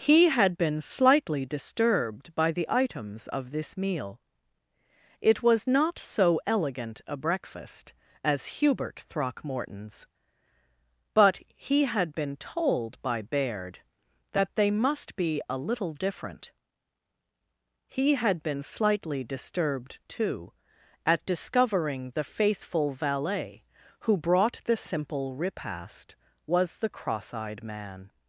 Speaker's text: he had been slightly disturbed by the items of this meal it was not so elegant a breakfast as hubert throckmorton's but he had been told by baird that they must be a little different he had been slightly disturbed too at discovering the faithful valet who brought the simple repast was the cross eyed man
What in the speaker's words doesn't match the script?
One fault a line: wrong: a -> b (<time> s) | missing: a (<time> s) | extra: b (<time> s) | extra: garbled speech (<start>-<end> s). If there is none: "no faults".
no faults